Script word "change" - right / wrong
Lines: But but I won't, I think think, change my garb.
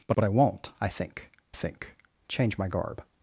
right